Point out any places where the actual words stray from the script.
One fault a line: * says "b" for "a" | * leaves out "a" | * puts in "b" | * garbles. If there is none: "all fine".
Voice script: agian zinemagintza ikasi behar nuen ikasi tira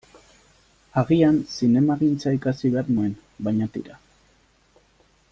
* says "baina" for "ikasi"